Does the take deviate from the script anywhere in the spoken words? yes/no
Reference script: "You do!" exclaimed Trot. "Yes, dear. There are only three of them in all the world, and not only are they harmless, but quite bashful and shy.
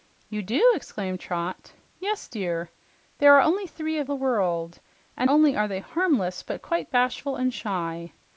yes